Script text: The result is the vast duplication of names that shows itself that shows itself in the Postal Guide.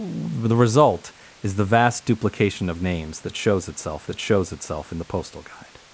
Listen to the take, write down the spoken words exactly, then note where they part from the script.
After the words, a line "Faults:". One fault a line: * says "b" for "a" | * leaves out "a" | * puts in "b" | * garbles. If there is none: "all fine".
The result is the vast duplication of names that shows itself that shows itself in the Postal Guide.
Faults:
all fine